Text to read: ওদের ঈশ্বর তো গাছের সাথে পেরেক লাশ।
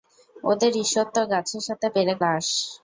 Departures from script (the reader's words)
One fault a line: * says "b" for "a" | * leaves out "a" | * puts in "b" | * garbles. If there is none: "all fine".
all fine